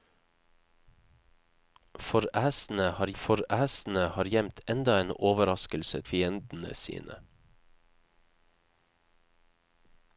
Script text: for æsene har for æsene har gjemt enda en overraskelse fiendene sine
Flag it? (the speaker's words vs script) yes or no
no